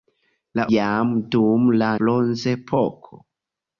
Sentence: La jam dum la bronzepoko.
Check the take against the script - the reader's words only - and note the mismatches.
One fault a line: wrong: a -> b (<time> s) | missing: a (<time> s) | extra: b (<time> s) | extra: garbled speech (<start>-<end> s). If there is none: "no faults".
no faults